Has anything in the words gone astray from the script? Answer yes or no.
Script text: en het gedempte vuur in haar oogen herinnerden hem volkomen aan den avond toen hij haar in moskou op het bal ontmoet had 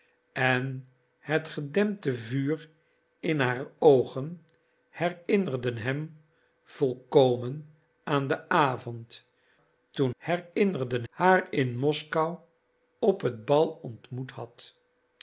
yes